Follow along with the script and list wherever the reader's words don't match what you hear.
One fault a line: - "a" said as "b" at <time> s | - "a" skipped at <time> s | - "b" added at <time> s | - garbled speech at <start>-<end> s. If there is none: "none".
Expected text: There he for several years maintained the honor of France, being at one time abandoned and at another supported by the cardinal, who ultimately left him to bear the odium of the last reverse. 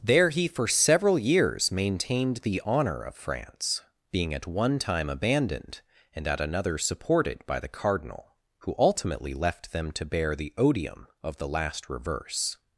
- "him" said as "them" at 9.7 s